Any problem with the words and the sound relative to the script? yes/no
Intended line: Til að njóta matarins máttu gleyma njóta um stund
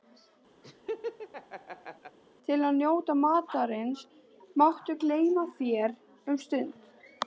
yes